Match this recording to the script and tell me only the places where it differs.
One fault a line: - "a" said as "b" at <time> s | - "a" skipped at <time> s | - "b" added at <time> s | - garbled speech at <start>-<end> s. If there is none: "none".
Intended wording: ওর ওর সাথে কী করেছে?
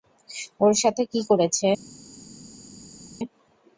- "ওর" skipped at 0.7 s